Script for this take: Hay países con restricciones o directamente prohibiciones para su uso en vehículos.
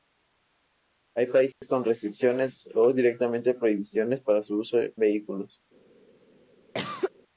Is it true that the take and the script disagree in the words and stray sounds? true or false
true